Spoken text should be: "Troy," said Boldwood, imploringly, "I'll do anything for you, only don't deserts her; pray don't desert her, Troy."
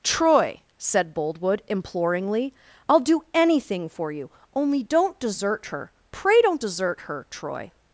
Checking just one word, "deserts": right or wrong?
wrong